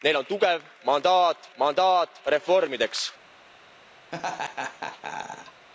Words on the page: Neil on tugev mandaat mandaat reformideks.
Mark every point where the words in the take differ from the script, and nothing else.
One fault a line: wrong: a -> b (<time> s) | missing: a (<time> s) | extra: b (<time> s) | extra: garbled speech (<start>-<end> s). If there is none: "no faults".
no faults